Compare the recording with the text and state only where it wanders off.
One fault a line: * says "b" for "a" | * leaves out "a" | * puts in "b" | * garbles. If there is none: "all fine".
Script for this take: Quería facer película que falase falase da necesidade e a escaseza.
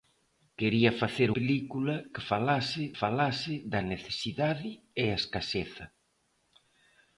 all fine